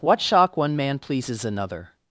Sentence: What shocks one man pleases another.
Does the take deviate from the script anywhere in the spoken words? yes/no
yes